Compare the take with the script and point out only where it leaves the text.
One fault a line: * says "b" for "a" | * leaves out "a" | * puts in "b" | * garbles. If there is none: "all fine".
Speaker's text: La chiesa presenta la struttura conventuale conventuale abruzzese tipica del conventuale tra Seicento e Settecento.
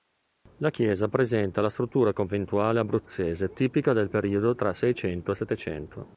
* leaves out "conventuale"
* says "periodo" for "conventuale"